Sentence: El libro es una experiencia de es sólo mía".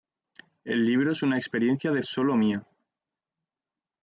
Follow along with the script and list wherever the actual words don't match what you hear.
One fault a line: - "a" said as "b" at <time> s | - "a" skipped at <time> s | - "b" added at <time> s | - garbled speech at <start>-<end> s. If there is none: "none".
none